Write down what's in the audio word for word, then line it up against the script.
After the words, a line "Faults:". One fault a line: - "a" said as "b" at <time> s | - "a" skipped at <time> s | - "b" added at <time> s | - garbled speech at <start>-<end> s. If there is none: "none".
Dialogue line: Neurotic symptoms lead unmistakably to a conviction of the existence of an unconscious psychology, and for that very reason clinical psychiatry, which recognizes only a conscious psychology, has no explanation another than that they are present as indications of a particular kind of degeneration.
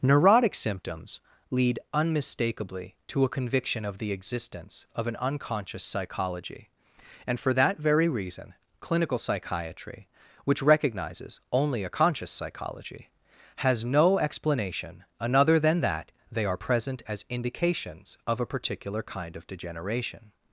Neurotic symptoms lead unmistakably to a conviction of the existence of an unconscious psychology, and for that very reason clinical psychiatry, which recognizes only a conscious psychology, has no explanation another than that they are present as indications of a particular kind of degeneration.
Faults:
none